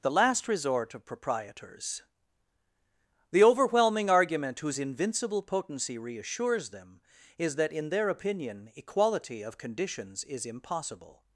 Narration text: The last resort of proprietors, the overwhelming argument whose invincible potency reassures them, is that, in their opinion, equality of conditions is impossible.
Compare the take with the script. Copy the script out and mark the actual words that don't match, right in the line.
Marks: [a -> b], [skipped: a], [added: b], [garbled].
The last resort of proprietors, the overwhelming argument whose invincible potency reassures them, is that, in their opinion, equality of conditions is impossible.